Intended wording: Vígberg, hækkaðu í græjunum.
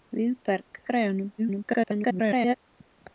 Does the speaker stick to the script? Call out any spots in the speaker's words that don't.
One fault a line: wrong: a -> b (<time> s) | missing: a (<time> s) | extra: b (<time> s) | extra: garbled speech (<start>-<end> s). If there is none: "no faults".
missing: hækkaðu (0.8 s)
extra: garbled speech (1.4-2.6 s)